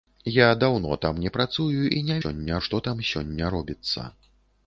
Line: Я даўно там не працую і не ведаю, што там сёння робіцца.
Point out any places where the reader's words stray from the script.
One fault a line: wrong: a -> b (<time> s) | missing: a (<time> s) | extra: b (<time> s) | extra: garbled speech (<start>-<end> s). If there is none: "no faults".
wrong: ведаю -> сёння (2.2 s)